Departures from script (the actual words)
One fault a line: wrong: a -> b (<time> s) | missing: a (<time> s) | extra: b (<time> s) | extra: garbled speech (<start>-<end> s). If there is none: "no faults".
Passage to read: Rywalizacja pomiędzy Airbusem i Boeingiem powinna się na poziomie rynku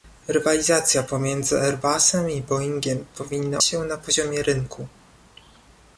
no faults